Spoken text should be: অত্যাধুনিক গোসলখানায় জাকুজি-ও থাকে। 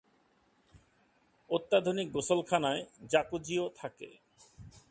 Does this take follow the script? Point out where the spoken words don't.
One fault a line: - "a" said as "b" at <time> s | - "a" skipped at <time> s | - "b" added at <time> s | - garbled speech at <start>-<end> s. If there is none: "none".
none